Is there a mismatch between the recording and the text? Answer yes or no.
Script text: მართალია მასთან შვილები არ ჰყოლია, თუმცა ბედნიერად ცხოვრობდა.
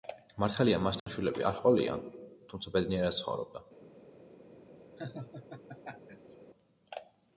no